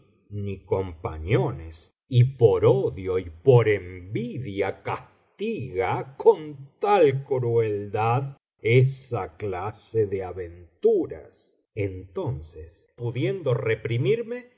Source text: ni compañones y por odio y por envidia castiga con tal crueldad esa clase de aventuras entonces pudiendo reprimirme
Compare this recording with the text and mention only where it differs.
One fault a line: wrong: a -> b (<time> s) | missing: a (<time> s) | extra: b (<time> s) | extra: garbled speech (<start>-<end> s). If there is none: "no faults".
no faults